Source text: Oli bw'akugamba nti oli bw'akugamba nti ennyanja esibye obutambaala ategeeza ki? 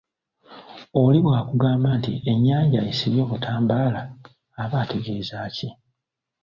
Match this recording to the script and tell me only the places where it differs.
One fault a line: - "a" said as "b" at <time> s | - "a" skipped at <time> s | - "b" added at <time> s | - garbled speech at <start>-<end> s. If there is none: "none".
- "oli bw'akugamba nti" skipped at 2.1 s
- "aba" added at 4.6 s